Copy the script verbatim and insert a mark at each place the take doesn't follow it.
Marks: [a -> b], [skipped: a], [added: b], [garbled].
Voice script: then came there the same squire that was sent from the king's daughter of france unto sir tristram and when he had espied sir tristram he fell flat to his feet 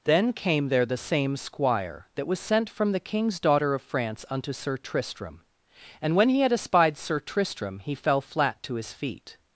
then came there the same squire that was sent from the king's daughter of france unto sir tristram and when he had espied sir tristram he fell flat to his feet